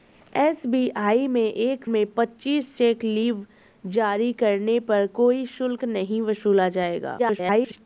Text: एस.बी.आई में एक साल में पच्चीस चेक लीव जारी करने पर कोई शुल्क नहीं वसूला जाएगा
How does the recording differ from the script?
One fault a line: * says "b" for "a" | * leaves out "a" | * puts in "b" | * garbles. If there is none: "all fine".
* leaves out "साल"
* garbles